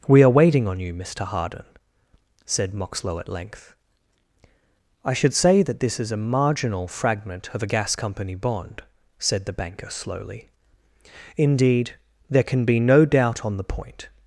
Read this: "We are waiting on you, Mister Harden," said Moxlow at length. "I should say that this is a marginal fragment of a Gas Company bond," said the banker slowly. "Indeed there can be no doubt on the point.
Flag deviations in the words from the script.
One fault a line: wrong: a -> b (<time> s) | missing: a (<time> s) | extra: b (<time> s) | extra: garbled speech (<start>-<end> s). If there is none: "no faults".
no faults